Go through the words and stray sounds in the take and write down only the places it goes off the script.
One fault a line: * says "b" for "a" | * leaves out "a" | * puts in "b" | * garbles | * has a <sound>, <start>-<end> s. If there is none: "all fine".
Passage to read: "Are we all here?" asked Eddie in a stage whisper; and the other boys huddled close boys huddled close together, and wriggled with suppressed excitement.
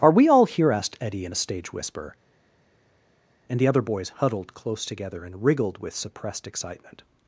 * leaves out "boys huddled close"